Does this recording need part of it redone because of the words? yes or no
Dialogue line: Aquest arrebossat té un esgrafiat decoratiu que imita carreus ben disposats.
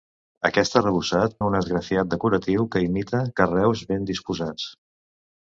yes